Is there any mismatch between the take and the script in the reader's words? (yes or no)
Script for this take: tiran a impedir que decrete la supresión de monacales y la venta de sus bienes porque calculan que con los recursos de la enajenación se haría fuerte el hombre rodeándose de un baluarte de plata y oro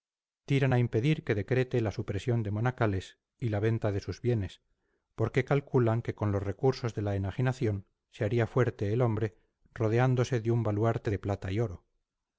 no